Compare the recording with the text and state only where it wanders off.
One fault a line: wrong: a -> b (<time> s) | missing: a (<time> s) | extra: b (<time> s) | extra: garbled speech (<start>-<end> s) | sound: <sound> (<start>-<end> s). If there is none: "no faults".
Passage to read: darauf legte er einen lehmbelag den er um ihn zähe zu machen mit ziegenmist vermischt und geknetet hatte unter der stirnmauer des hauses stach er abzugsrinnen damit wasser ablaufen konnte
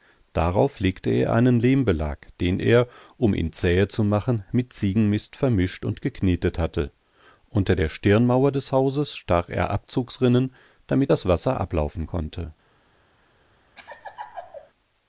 extra: das (11.1 s)
sound: laugh (13.8-14.7 s)